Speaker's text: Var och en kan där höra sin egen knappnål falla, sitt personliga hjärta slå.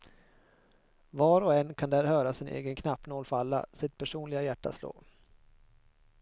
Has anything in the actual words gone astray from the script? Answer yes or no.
no